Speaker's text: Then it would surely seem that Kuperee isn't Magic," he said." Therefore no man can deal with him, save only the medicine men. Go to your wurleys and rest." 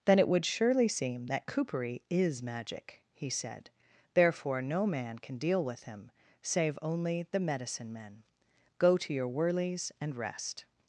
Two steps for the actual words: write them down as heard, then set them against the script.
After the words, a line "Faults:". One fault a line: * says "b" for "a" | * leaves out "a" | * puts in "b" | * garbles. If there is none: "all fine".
Then it would surely seem that Kuperee is Magic," he said." Therefore no man can deal with him, save only the medicine men. Go to your wurleys and rest."
Faults:
* says "is" for "isn't"